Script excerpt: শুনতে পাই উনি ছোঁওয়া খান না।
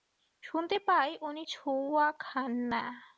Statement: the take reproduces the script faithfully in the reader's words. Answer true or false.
true